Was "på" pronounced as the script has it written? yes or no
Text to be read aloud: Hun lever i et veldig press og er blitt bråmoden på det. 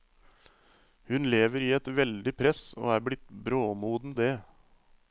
no